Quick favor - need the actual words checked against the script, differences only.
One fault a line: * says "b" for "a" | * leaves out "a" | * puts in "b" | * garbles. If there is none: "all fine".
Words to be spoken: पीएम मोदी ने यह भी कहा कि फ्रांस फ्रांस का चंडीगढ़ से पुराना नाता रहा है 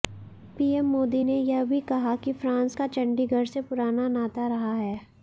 * leaves out "फ्रांस"